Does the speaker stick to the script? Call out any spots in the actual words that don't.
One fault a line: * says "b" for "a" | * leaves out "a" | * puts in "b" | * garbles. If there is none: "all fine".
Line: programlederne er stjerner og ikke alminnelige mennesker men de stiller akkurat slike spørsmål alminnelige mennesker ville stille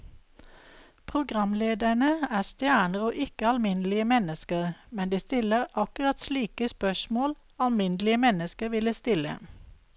all fine